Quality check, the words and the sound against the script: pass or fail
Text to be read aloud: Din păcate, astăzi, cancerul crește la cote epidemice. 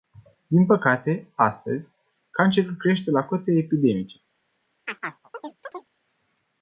fail